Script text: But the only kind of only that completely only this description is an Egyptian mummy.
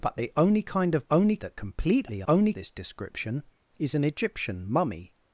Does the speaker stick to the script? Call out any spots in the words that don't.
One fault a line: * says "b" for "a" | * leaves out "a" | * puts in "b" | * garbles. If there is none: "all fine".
all fine